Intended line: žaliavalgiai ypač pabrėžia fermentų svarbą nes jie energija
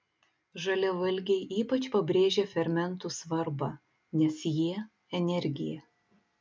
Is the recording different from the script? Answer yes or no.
no